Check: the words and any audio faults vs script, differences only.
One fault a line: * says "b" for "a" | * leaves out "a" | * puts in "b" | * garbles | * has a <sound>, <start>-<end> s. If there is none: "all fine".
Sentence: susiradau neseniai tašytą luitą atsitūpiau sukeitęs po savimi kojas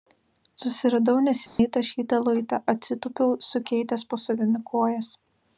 * has a dropout, 1.5-1.6 s